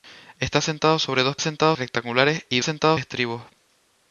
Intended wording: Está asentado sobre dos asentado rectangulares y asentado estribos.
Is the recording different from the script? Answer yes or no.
no